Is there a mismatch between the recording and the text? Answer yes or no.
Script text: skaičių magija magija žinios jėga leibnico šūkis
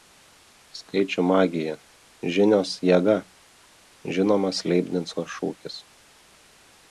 yes